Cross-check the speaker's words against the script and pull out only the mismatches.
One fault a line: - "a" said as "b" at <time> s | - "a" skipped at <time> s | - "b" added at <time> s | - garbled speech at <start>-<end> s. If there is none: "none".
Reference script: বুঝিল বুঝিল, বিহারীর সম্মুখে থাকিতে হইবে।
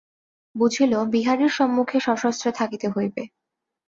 - "বুঝিল" skipped at 0.9 s
- "সশস্ত্রে" added at 2.0 s